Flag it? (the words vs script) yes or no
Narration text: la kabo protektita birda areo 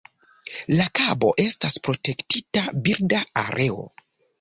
yes